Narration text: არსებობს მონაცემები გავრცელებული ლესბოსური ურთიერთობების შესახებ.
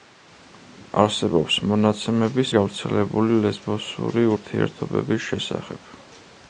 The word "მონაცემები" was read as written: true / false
true